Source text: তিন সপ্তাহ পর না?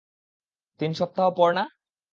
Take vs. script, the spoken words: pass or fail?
pass